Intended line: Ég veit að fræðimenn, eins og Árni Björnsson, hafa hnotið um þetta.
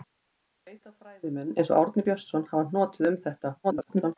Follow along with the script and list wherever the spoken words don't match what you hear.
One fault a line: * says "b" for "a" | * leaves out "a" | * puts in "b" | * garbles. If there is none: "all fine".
* garbles